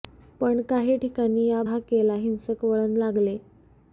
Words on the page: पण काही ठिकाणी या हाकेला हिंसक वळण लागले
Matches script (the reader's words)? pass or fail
pass